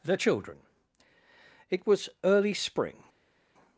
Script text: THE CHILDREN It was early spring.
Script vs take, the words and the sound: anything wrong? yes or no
no